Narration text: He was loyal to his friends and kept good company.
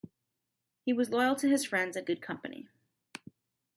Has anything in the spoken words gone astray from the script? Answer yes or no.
yes